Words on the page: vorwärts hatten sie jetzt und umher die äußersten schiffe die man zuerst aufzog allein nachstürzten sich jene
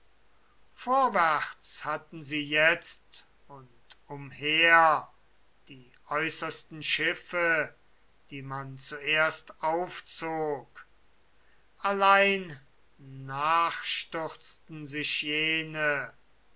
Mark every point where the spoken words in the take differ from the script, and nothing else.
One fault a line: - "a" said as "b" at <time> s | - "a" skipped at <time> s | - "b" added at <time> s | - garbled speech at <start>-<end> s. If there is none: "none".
none